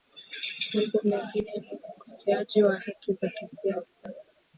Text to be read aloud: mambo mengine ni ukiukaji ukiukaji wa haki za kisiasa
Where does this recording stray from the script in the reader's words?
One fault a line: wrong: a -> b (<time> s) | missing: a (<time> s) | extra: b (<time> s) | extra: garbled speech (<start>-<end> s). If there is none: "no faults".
missing: ukiukaji (2.6 s)